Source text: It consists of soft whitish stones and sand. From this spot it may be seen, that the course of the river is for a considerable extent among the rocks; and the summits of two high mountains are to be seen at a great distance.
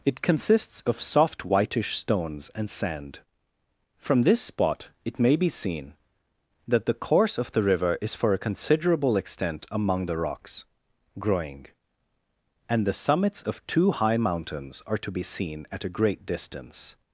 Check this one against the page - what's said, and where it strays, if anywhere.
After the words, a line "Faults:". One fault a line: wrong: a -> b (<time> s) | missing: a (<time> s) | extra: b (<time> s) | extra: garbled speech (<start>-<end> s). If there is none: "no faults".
It consists of soft whitish stones and sand. From this spot it may be seen, that the course of the river is for a considerable extent among the rocks; growing and the summits of two high mountains are to be seen at a great distance.
Faults:
extra: growing (11.2 s)